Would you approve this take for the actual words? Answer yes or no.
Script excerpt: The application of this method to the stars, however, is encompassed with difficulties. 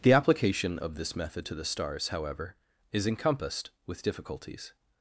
yes